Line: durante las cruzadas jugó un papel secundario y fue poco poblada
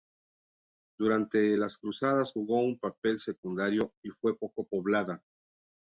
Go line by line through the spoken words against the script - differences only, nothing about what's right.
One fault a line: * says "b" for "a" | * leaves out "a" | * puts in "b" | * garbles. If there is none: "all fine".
all fine